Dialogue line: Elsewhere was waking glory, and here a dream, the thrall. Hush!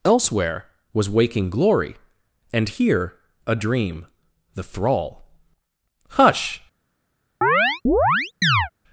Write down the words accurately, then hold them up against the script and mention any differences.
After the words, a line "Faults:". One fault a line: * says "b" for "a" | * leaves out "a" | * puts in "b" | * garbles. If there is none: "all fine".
Elsewhere was waking glory, and here a dream, the thrall. Hush!
Faults:
all fine